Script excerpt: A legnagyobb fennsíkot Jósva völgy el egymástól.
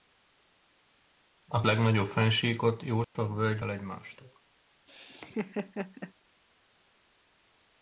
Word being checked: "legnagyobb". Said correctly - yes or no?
yes